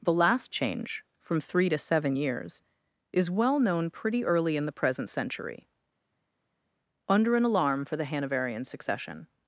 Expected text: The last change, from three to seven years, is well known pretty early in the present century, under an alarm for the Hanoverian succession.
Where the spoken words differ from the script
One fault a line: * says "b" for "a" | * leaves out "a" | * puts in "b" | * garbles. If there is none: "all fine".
all fine